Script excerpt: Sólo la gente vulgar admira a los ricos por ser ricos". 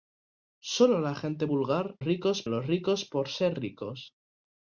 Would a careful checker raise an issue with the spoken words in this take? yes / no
yes